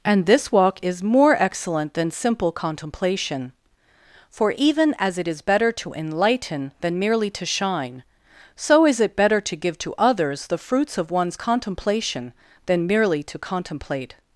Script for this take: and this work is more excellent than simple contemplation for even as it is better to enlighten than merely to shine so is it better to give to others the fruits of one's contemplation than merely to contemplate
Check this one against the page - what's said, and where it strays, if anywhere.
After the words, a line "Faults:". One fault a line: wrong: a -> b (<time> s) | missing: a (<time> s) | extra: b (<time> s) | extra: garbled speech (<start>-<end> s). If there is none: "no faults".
and this walk is more excellent than simple contemplation for even as it is better to enlighten than merely to shine so is it better to give to others the fruits of one's contemplation than merely to contemplate
Faults:
wrong: work -> walk (0.5 s)